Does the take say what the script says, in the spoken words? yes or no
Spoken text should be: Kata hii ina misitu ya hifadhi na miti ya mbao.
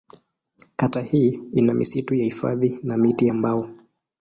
yes